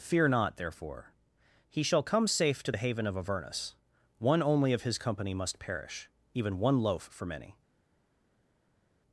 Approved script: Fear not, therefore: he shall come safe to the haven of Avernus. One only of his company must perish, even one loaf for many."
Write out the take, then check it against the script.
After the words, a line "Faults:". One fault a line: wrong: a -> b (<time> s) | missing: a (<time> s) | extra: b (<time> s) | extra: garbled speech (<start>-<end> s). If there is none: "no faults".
Fear not, therefore: he shall come safe to the haven of Avernus. One only of his company must perish, even one loaf for many."
Faults:
no faults